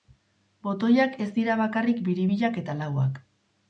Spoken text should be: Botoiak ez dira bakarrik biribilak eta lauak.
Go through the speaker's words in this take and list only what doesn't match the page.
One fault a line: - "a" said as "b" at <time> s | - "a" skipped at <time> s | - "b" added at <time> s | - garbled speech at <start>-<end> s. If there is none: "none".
none